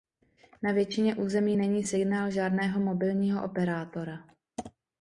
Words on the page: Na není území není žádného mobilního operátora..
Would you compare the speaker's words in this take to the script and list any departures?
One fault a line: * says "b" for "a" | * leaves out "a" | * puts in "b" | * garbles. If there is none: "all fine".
* says "většině" for "není"
* puts in "signál"